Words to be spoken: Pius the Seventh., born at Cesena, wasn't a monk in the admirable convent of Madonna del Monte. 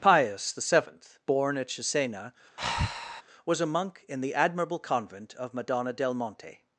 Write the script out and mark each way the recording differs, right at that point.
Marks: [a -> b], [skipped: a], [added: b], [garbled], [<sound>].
Pius the Seventh., born at Cesena, [breath] [wasn't -> was] a monk in the admirable convent of Madonna del Monte.